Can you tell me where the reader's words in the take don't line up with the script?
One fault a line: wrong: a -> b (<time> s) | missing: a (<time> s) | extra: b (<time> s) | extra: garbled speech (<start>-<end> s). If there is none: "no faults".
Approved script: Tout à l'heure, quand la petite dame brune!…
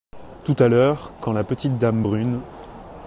no faults